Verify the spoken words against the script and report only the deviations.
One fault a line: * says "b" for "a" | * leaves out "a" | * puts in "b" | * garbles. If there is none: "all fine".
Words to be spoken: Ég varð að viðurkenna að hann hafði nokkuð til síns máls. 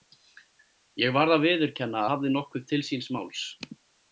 * leaves out "að hann"